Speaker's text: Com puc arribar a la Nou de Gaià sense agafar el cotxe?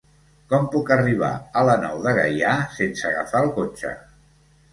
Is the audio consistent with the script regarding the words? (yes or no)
yes